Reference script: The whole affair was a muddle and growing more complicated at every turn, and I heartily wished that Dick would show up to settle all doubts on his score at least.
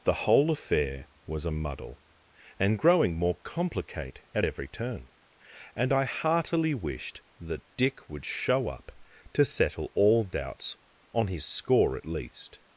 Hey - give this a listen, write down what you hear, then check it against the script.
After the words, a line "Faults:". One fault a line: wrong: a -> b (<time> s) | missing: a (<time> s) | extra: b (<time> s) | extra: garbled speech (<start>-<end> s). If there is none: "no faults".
The whole affair was a muddle and growing more complicate at every turn, and I heartily wished that Dick would show up to settle all doubts on his score at least.
Faults:
wrong: complicated -> complicate (3.4 s)